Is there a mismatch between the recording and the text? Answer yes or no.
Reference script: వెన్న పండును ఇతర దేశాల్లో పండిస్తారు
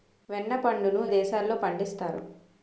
yes